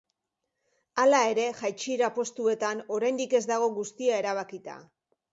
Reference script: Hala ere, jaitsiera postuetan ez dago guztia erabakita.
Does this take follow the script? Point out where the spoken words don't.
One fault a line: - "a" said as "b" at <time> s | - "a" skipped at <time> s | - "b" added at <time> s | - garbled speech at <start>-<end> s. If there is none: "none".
- "oraindik" added at 3.0 s